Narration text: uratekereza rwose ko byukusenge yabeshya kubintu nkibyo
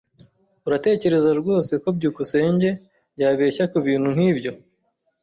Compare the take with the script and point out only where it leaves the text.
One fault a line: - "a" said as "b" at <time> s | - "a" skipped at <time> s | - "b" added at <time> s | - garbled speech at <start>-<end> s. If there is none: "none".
none